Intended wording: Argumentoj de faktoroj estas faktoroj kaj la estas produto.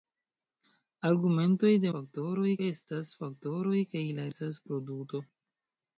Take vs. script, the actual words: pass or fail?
pass